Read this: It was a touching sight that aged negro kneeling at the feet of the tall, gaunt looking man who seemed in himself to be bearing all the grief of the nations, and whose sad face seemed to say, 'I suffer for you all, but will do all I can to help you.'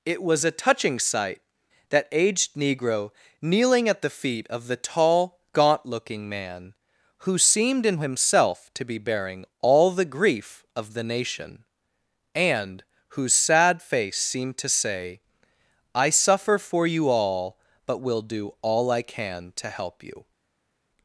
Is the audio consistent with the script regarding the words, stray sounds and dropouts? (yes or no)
no